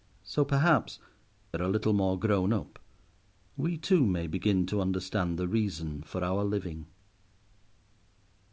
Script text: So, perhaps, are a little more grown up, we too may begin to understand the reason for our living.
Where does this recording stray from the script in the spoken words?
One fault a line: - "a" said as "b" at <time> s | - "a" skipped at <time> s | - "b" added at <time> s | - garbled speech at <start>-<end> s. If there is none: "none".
none